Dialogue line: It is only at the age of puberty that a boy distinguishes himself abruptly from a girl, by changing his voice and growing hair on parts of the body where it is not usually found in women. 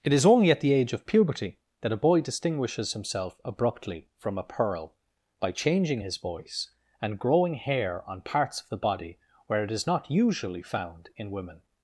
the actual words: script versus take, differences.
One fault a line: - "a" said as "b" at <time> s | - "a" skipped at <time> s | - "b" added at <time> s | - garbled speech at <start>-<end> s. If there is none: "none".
- "girl" said as "pearl" at 4.4 s